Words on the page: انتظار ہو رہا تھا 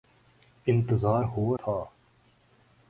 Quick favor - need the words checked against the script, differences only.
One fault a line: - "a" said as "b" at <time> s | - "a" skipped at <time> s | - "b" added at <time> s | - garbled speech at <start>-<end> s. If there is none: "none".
- "رہا" skipped at 1.6 s